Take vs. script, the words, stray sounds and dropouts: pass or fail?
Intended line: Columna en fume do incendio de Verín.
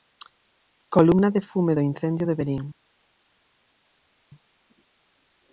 fail